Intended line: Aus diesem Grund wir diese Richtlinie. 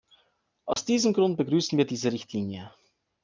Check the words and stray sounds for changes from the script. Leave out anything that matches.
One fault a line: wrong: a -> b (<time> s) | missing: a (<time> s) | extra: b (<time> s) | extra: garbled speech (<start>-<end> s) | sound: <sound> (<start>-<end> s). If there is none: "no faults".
sound: dropout (0.7-0.8 s)
extra: begrüßen (1.4 s)